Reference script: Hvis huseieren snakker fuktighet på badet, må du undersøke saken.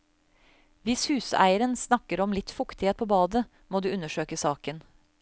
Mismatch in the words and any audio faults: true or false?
true